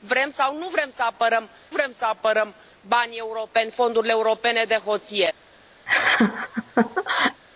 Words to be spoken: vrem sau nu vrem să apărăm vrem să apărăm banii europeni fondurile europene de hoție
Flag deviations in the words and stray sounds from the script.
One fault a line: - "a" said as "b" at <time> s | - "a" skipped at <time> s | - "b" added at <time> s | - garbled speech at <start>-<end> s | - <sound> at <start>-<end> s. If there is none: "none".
- laugh at 5.9-7.4 s